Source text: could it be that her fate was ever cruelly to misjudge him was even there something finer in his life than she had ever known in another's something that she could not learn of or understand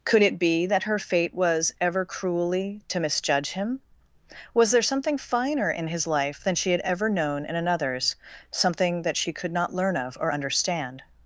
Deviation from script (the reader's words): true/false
true